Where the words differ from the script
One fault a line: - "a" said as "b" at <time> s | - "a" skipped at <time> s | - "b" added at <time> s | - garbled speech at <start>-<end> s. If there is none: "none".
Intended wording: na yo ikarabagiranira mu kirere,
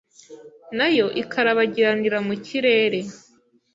none